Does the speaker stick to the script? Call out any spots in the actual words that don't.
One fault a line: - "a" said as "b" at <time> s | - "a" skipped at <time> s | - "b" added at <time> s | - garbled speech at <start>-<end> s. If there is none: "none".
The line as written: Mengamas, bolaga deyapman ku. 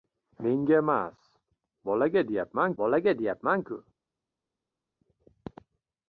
- "bolaga deyapman" added at 2.8 s